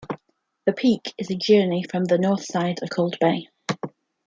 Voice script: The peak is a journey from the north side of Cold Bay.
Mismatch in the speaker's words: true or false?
false